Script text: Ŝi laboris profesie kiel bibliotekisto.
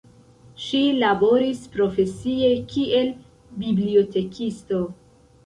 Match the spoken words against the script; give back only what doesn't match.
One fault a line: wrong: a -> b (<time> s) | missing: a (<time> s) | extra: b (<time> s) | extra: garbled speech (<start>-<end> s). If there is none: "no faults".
no faults